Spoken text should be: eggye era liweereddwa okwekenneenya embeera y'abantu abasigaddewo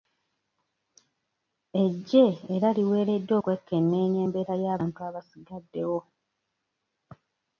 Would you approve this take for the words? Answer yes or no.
yes